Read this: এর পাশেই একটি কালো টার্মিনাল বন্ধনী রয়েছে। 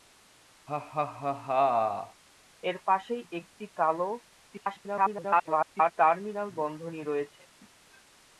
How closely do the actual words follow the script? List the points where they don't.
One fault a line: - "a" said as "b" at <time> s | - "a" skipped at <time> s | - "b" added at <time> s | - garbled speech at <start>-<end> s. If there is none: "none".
- garbled speech at 4.5-5.9 s